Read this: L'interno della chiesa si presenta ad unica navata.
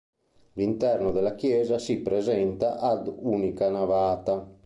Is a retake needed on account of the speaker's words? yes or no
no